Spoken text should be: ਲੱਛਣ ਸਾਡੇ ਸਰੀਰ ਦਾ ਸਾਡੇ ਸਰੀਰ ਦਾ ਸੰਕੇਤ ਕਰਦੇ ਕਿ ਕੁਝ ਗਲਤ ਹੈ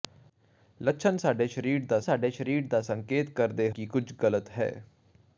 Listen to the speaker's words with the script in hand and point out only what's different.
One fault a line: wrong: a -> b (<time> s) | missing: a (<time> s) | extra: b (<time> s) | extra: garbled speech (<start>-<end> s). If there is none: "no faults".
no faults